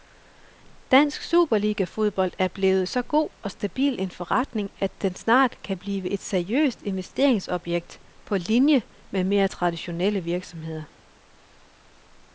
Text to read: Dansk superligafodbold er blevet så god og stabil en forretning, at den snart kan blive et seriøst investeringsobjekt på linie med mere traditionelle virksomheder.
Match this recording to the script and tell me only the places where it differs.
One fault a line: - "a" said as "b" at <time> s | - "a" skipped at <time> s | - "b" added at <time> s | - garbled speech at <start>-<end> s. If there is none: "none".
none